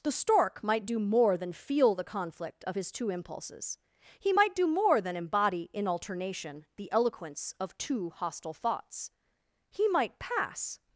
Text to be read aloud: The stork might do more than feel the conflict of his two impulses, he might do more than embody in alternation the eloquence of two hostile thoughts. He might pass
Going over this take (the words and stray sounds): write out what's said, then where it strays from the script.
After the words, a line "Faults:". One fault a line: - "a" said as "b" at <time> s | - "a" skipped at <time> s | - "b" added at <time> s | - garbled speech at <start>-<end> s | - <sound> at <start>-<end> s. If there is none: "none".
The stork might do more than feel the conflict of his two impulses, he might do more than embody in alternation the eloquence of two hostile thoughts. He might pass
Faults:
none